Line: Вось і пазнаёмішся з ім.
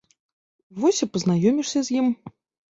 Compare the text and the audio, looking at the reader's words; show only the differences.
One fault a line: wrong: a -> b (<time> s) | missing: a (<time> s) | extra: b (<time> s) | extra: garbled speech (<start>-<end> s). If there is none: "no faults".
no faults